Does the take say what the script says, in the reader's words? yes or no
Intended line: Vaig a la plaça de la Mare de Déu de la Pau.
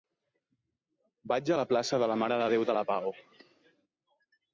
yes